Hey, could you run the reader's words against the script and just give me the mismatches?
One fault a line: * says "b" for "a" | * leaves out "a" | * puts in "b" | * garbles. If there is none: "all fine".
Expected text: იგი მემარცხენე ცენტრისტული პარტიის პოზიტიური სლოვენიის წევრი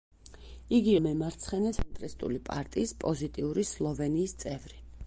all fine